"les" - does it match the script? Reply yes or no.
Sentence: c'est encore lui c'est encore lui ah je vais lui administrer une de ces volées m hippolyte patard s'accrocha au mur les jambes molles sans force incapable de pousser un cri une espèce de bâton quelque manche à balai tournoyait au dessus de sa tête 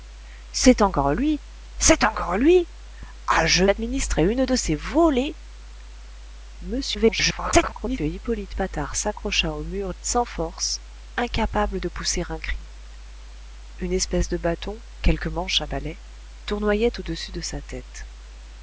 no